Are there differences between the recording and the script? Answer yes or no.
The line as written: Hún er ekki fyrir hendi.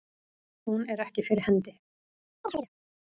no